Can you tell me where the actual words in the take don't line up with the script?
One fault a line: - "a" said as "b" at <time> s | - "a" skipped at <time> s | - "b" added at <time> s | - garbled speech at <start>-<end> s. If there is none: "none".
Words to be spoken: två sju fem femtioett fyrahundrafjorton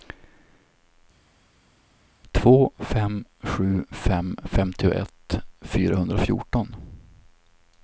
- "fem" added at 2.8 s